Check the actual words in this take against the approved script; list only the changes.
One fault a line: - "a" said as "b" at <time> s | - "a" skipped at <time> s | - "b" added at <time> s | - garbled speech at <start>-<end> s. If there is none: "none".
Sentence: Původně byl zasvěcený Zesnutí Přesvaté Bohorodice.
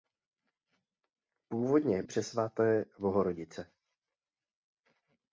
- "byl zasvěcený Zesnutí" skipped at 2.0 s